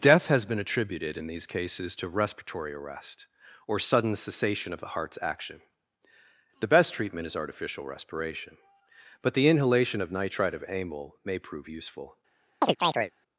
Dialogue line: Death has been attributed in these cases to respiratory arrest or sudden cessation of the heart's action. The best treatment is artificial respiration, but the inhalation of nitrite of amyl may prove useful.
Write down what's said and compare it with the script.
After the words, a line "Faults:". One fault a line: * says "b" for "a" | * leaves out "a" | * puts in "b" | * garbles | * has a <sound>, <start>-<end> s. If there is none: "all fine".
Death has been attributed in these cases to respiratory arrest or sudden cessation of the heart's action. The best treatment is artificial respiration, but the inhalation of nitrite of amyl may prove useful.
Faults:
* has a chirp, 12.6-13.1 s